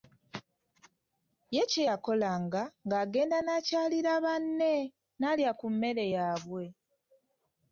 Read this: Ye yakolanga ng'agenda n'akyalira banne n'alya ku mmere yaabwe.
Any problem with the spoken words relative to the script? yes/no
yes